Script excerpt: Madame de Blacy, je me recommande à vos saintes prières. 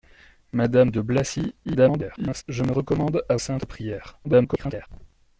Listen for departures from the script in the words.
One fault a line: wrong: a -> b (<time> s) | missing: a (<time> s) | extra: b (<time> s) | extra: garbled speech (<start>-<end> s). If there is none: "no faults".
extra: garbled speech (1.6-2.4 s)
missing: vos (3.4 s)
extra: garbled speech (4.2-4.9 s)